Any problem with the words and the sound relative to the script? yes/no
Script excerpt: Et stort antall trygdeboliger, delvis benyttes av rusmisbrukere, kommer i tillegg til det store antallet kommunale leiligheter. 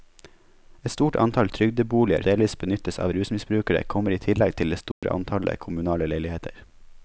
yes